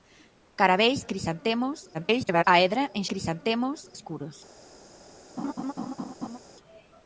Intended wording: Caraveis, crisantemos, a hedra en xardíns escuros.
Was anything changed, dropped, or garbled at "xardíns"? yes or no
yes